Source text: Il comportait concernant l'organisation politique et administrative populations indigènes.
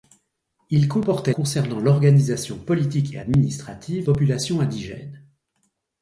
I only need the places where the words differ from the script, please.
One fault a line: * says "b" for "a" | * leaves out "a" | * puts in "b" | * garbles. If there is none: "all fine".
all fine